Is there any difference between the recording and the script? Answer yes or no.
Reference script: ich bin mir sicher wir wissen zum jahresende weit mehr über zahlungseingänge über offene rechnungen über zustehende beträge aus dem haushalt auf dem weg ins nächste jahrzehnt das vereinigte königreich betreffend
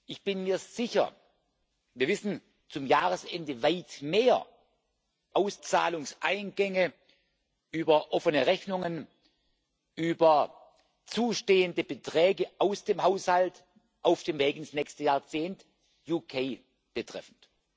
yes